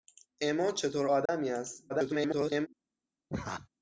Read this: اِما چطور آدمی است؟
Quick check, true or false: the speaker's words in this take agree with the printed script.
false